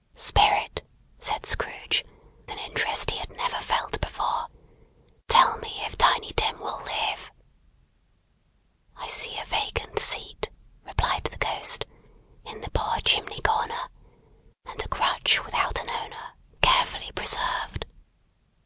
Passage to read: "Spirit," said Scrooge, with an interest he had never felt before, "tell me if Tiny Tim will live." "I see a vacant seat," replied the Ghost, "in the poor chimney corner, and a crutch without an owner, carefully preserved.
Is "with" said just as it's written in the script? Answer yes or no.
no